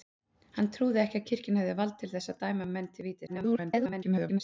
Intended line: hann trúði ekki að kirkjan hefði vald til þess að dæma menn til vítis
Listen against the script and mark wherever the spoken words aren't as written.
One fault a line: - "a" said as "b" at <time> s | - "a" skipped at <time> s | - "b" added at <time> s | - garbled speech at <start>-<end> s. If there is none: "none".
- garbled speech at 3.3-4.4 s